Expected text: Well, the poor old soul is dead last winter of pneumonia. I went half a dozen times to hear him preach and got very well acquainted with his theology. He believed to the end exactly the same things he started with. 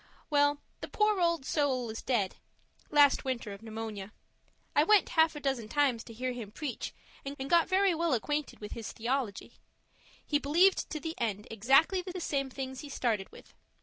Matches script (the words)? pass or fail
fail